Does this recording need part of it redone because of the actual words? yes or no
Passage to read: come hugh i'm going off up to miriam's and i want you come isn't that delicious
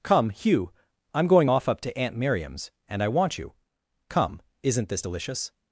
yes